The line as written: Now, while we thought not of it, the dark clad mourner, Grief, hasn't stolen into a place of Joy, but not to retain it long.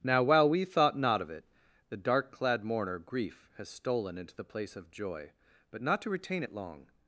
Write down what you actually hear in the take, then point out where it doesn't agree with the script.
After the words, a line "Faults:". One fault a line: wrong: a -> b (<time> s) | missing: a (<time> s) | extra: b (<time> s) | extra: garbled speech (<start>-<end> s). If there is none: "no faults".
Now, while we thought not of it, the dark clad mourner, Grief, has stolen into the place of Joy, but not to retain it long.
Faults:
wrong: hasn't -> has (3.6 s)
wrong: a -> the (4.3 s)